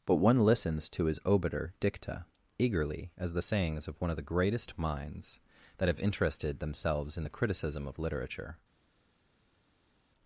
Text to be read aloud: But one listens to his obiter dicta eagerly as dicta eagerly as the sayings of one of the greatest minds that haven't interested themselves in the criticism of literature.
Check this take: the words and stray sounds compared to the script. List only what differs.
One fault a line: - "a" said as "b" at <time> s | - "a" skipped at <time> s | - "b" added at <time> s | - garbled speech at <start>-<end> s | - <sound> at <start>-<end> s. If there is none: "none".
- "dicta eagerly as" skipped at 3.3 s
- "haven't" said as "have" at 5.9 s